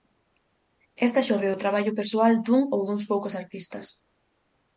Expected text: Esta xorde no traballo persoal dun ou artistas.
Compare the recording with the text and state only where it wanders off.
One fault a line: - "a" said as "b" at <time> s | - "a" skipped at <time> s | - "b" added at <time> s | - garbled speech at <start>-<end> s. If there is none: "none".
- "no" said as "do" at 1.5 s
- "duns poucos" added at 2.9 s